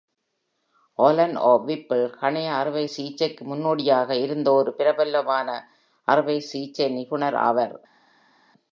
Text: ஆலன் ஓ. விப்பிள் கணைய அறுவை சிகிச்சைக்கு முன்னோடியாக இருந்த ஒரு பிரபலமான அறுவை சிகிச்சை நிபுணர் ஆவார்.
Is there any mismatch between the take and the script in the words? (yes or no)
no